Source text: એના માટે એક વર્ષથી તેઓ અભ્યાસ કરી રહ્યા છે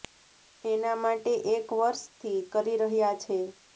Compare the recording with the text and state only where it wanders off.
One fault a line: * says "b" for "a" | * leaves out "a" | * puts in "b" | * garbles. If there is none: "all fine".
* leaves out "તેઓ અભ્યાસ"